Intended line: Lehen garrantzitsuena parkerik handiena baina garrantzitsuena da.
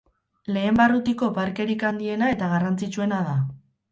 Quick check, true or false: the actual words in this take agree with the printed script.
false